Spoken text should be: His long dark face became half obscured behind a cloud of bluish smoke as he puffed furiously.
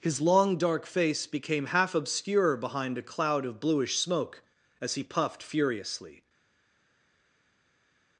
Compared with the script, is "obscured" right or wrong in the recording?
wrong